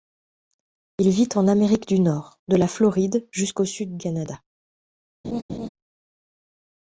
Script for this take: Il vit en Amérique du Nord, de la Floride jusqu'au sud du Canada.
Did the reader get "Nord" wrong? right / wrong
right